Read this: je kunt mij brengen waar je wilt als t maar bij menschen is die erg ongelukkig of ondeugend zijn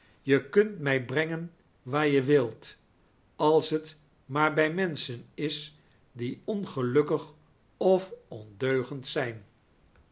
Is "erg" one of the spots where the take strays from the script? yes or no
yes